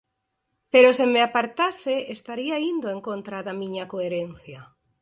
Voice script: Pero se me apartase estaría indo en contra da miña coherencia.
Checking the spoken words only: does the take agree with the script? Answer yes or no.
yes